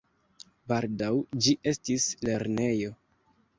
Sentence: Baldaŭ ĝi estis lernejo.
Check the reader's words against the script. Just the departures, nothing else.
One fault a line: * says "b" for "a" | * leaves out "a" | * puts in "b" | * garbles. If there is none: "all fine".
all fine